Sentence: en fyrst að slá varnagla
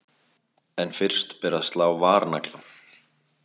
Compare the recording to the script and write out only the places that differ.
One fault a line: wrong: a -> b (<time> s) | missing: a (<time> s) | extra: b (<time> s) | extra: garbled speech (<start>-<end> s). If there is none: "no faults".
extra: ber (1.4 s)